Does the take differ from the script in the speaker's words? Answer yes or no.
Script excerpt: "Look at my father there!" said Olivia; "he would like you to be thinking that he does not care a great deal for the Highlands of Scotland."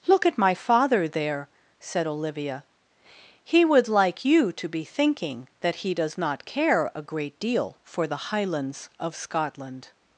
no